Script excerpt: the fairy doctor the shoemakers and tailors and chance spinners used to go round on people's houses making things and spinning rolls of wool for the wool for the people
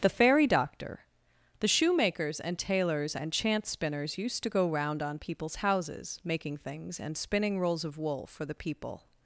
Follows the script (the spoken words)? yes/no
no